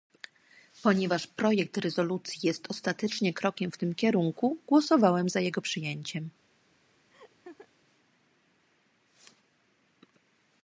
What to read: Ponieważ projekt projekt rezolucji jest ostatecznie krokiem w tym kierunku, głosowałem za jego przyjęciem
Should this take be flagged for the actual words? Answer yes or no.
yes